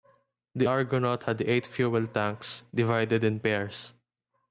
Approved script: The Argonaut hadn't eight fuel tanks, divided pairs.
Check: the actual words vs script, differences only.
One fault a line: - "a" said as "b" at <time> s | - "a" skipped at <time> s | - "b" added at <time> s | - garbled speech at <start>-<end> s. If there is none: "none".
- "hadn't" said as "had" at 1.2 s
- "in" added at 3.2 s